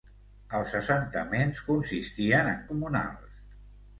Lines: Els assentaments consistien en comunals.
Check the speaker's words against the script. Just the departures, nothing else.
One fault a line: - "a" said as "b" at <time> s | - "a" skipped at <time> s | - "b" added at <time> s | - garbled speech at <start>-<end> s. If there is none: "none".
none